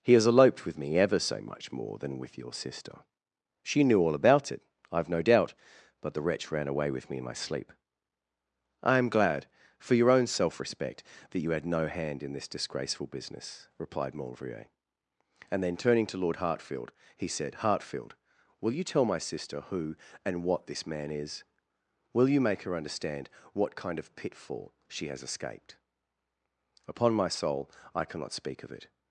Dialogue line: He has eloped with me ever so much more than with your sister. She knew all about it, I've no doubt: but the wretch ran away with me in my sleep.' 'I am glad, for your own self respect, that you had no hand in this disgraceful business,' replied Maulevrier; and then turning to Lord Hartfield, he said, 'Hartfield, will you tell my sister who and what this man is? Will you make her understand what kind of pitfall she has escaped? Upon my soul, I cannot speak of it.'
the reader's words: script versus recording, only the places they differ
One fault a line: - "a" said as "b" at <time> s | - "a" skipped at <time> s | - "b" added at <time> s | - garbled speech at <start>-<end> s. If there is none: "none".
none